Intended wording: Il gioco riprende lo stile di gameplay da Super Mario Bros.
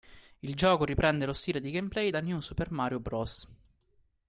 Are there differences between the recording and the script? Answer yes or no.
yes